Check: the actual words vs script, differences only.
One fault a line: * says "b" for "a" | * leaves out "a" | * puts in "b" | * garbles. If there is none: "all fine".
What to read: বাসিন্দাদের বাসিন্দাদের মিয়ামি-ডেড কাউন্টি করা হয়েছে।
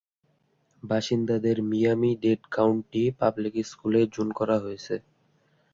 * leaves out "বাসিন্দাদের"
* puts in "পাবলিক স্কুলে জোন"